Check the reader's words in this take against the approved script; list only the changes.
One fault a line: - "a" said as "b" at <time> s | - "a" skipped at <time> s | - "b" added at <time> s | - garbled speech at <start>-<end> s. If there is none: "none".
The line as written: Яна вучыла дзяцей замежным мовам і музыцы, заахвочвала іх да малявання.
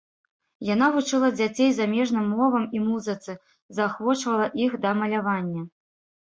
none